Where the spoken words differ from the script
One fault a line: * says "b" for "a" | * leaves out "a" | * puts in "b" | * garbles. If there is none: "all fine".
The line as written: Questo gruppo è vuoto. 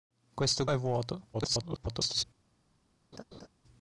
* leaves out "gruppo"
* garbles